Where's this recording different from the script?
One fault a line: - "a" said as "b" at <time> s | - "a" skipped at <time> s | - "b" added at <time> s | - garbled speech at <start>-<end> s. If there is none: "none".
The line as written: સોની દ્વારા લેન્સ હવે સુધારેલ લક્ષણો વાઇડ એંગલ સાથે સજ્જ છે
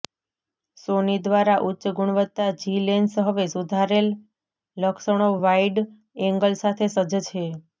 - "ઉચ્ચ ગુણવત્તા જી" added at 1.6 s